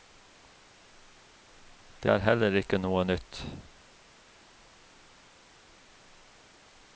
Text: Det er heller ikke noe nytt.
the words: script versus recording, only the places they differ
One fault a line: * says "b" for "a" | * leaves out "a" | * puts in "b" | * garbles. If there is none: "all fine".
all fine